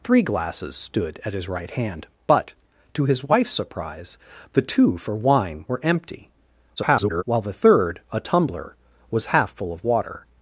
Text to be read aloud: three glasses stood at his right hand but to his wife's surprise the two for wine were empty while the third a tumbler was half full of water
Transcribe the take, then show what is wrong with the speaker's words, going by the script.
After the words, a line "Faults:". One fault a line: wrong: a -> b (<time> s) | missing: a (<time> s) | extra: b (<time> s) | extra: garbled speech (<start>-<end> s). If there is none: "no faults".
three glasses stood at his right hand but to his wife's surprise the two for wine were empty [garbled] while the third a tumbler was half full of water
Faults:
extra: garbled speech (6.8-7.2 s)